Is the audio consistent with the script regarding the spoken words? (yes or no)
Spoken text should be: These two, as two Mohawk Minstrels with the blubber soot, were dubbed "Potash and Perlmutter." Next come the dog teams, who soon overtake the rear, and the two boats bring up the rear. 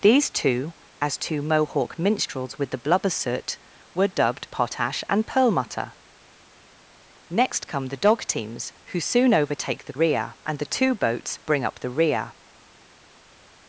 yes